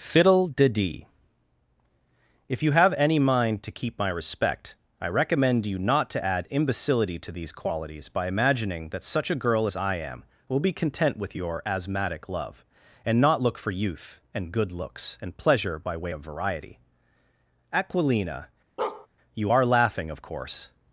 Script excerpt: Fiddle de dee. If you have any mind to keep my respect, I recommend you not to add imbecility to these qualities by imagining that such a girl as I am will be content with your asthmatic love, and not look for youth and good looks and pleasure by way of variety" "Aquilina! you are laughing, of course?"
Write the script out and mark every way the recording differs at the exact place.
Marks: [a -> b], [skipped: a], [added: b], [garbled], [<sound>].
Fiddle de dee. If you have any mind to keep my respect, I recommend you not to add imbecility to these qualities by imagining that such a girl as I am will be content with your asthmatic love, and not look for youth and good looks and pleasure by way of variety" "Aquilina! [bark] you are laughing, of course?"